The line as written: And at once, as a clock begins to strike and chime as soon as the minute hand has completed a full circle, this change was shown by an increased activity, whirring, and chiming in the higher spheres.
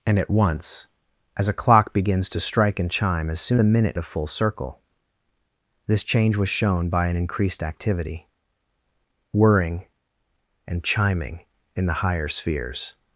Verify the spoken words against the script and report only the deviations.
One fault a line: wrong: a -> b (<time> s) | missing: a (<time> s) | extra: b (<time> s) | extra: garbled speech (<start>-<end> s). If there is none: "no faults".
missing: as (3.6 s)
missing: hand has completed (4.0 s)